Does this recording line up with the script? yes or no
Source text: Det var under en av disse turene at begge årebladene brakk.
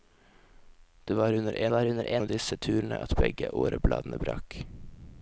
no